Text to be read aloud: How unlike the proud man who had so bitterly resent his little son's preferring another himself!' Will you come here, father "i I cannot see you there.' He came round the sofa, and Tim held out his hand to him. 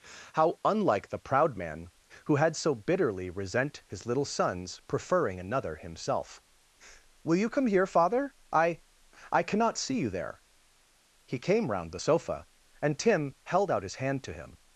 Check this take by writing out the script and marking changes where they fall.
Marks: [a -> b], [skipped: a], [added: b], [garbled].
How unlike the proud man who had so bitterly resent his little son's preferring another himself!' Will you come here, father "i I cannot see you there.' He came round the sofa, and Tim held out his hand to him.